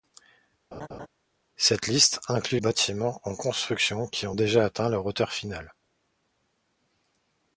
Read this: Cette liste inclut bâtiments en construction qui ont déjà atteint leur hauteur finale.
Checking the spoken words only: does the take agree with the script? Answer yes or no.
yes